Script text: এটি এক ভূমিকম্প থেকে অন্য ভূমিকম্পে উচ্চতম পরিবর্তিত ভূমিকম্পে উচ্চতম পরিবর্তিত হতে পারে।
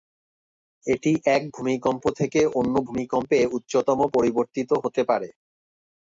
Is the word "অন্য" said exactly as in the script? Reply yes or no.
yes